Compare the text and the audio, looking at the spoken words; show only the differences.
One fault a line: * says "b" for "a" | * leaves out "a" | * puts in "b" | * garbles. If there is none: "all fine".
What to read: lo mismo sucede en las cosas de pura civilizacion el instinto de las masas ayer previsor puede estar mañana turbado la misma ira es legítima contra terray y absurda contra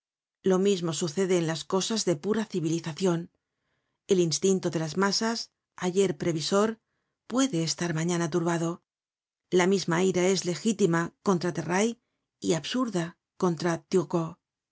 all fine